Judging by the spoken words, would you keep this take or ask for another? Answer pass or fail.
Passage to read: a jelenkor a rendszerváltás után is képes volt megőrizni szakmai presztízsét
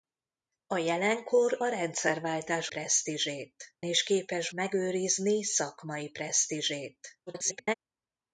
fail